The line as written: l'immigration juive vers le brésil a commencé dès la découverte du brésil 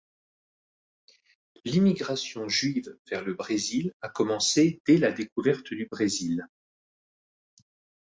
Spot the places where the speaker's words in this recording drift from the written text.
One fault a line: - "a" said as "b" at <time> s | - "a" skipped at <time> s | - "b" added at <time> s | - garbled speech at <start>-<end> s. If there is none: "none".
none